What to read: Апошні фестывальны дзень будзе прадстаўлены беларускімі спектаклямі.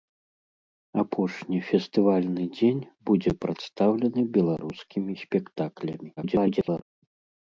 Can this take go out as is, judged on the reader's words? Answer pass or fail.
fail